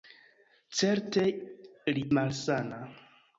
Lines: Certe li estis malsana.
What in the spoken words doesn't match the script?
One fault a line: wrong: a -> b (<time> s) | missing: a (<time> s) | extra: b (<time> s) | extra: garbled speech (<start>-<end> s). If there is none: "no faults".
missing: estis (2.0 s)